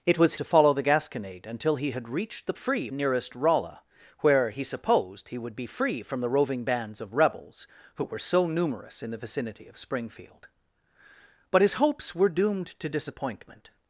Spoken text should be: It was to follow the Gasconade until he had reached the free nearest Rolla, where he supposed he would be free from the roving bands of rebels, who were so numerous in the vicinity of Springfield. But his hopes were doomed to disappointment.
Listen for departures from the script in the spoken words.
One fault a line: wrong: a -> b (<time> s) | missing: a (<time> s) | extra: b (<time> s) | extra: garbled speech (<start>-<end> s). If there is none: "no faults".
no faults